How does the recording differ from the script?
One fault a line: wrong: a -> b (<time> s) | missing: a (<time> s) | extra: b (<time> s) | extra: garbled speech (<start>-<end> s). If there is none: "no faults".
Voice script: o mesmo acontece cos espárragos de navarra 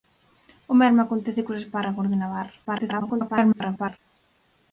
extra: garbled speech (2.6-4.0 s)